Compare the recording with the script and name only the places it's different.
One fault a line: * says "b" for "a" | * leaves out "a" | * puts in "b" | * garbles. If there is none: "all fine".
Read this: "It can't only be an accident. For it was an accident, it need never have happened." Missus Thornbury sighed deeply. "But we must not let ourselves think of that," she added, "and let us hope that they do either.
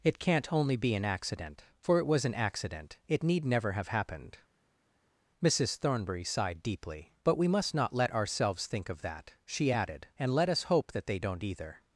* says "don't" for "do"